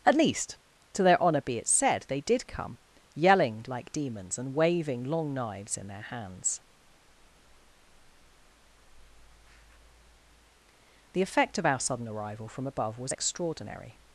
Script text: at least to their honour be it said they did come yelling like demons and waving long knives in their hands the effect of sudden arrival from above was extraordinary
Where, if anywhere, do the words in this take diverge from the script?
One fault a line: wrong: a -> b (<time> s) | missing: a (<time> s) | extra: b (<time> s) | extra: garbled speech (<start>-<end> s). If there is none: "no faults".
extra: our (11.7 s)